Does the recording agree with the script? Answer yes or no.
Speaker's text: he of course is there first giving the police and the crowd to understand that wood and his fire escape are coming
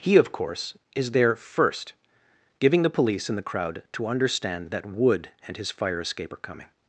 yes